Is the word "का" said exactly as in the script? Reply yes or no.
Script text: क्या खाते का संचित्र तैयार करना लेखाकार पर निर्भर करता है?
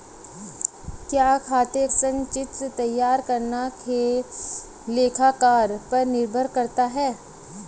no